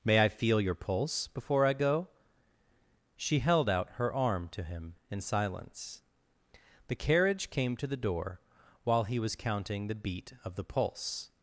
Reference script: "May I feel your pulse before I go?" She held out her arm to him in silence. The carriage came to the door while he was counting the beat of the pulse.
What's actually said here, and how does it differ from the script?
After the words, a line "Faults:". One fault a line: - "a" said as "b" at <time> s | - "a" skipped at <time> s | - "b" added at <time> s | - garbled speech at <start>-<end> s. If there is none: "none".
"May I feel your pulse before I go?" She held out her arm to him in silence. The carriage came to the door while he was counting the beat of the pulse.
Faults:
none